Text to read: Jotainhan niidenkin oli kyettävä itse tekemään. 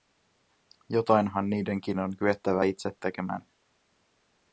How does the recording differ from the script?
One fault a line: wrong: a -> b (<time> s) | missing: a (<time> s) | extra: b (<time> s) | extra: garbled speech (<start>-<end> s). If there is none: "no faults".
wrong: oli -> on (2.0 s)